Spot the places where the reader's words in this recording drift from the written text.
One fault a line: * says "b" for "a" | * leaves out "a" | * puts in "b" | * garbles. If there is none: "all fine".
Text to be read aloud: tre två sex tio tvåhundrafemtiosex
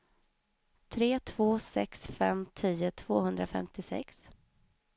* puts in "fem"